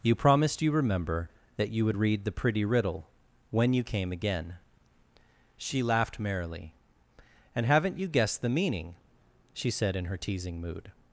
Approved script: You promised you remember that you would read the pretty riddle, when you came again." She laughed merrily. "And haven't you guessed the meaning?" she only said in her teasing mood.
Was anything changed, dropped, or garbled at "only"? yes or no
yes